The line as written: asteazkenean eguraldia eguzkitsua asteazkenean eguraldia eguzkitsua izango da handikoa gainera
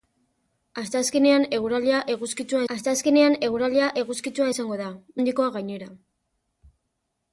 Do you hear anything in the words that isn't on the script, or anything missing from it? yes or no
no